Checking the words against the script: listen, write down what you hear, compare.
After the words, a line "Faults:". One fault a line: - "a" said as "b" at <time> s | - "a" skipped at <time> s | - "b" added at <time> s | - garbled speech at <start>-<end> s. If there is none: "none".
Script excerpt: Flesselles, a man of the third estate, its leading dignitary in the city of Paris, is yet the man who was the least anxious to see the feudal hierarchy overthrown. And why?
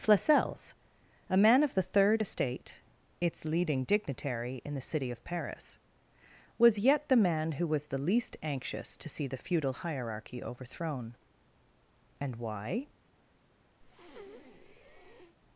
Flesselles, a man of the third estate, its leading dignitary in the city of Paris, was yet the man who was the least anxious to see the feudal hierarchy overthrown. And why?
Faults:
- "is" said as "was" at 6.6 s